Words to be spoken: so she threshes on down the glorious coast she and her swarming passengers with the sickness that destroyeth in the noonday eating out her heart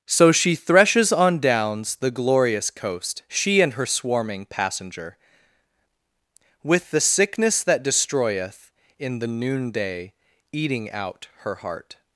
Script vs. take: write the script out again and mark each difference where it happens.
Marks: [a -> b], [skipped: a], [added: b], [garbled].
so she threshes on [down -> downs] the glorious coast she and her swarming [passengers -> passenger] with the sickness that destroyeth in the noonday eating out her heart